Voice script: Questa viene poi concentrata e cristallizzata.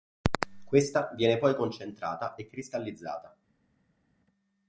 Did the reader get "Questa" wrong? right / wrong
right